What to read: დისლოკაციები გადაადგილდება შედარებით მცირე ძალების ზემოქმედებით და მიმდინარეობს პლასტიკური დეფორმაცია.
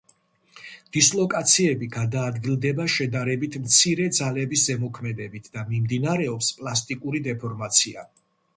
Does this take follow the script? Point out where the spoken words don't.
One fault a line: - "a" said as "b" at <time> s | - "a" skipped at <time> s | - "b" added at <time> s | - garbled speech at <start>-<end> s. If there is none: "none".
none